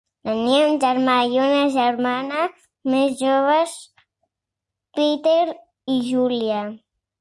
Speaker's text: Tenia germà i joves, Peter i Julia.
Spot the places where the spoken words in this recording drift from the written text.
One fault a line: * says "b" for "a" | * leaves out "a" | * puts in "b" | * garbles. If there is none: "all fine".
* puts in "un"
* puts in "una germana més"